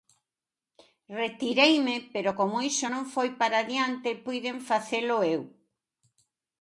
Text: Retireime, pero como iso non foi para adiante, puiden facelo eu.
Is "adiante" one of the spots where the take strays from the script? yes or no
no